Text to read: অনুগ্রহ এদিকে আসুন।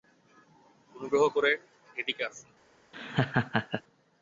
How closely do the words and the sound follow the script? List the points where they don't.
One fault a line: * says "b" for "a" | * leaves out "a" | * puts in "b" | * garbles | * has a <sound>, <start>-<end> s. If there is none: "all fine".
* puts in "করে"
* has a laugh, 2.9-3.8 s